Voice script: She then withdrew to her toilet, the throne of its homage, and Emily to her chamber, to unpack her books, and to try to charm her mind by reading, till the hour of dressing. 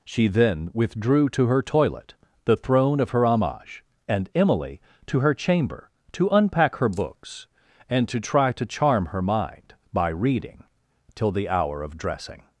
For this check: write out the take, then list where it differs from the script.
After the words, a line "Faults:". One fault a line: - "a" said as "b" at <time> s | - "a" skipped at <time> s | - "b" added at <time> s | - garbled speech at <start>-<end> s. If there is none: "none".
She then withdrew to her toilet, the throne of her homage, and Emily to her chamber, to unpack her books, and to try to charm her mind by reading, till the hour of dressing.
Faults:
- "its" said as "her" at 3.1 s